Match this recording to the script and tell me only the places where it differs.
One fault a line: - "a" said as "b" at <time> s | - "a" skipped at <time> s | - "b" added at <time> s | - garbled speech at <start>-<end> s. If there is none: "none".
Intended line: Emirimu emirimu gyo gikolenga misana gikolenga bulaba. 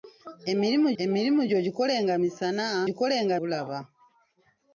none